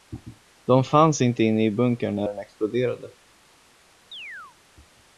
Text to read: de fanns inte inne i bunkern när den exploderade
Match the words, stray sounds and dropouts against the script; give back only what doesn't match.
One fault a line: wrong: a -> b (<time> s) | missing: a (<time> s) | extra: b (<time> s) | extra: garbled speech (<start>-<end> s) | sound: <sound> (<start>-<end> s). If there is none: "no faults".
sound: chirp (4.1-4.6 s)